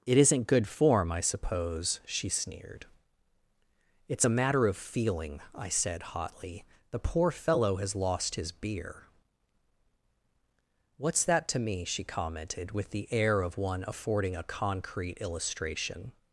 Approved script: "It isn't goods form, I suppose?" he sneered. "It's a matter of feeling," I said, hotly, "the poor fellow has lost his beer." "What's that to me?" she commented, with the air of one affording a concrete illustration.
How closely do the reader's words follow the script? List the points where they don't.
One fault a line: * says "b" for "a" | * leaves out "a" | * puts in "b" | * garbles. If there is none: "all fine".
* says "good" for "goods"
* says "she" for "he"